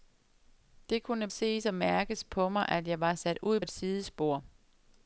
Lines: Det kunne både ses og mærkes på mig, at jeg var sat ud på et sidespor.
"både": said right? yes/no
no